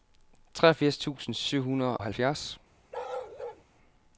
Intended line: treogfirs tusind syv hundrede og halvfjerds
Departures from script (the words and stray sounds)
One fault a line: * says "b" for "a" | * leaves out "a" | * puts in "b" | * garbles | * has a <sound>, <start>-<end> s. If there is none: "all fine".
* leaves out "og"
* has a bark, 2.9-3.6 s